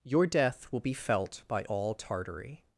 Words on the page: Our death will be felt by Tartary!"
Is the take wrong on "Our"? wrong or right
wrong